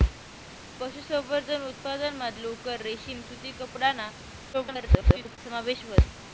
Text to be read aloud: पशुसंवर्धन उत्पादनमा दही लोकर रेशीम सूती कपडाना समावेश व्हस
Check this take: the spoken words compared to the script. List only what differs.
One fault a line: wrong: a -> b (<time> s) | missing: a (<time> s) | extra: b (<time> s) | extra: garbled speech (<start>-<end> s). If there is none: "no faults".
missing: दही (2.3 s)
extra: garbled speech (4.5-5.4 s)